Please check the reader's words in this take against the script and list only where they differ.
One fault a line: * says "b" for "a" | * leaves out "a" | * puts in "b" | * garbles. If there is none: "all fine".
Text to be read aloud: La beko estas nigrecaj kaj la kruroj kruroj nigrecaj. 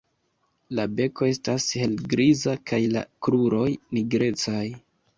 * says "helgriza" for "nigrecaj"
* leaves out "kruroj"